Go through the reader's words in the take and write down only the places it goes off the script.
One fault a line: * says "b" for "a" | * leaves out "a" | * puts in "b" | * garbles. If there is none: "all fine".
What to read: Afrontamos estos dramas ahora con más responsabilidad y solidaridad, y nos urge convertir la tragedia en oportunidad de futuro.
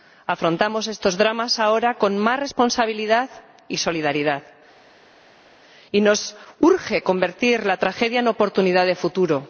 all fine